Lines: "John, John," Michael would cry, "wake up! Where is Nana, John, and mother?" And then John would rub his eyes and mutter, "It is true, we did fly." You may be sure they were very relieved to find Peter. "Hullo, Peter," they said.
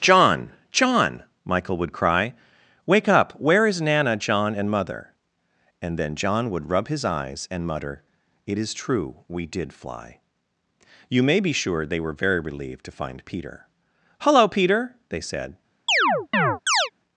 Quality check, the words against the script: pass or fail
pass